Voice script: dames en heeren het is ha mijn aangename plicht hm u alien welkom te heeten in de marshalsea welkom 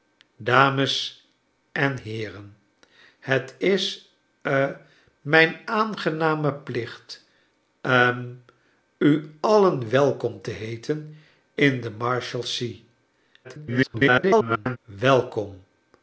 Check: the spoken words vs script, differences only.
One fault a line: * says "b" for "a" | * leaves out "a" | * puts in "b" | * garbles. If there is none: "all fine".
* garbles